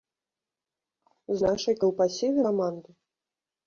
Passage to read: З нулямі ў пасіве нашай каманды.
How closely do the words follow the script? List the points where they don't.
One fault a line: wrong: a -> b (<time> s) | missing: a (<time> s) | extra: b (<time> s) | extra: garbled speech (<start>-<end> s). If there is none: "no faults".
wrong: нулямі -> нашай (1.5 s)
missing: нашай (2.4 s)